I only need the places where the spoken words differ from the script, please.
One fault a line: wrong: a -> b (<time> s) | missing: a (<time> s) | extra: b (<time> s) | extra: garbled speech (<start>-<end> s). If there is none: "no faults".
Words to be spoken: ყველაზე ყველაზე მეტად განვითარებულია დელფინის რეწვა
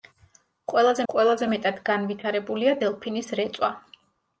no faults